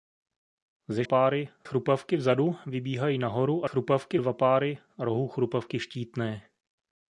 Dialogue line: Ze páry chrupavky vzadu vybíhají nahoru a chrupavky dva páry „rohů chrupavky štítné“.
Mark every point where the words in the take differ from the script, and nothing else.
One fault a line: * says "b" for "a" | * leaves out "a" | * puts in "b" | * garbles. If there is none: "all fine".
all fine